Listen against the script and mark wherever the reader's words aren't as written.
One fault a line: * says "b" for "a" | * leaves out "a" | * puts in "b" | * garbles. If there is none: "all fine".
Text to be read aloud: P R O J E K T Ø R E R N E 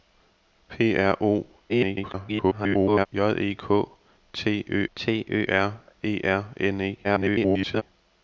* garbles
* puts in "T Ø"
* garbles